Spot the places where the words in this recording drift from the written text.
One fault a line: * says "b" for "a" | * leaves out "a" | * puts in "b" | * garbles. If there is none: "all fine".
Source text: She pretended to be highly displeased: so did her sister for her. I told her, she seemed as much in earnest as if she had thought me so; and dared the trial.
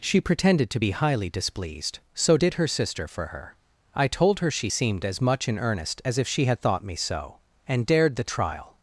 all fine